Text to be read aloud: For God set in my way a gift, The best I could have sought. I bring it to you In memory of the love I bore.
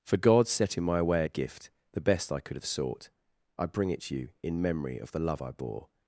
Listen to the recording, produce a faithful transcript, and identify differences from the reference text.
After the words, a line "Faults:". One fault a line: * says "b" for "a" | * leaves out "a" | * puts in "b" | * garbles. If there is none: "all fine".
For God set in my way a gift, The best I could have sought. I bring it to you In memory of the love I bore.
Faults:
all fine